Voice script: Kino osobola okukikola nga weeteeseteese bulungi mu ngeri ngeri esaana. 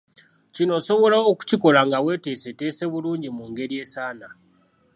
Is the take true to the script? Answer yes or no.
no